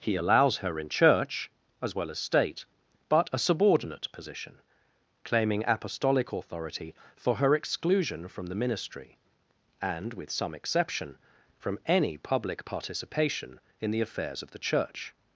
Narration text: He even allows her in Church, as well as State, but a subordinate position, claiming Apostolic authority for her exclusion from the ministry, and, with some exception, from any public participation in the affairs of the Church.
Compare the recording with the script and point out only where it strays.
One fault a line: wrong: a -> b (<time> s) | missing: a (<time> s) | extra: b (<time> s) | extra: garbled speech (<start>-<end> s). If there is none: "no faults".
missing: even (0.1 s)